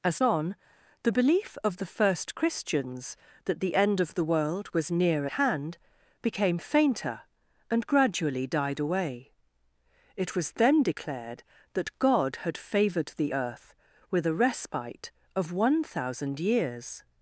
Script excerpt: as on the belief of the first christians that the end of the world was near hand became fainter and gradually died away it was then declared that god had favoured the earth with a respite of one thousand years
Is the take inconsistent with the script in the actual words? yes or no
no